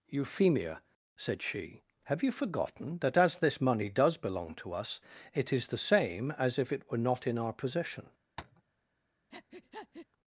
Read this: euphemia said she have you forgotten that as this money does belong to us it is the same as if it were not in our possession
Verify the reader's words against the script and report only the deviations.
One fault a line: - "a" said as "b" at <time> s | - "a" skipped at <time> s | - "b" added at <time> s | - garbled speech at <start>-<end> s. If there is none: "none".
none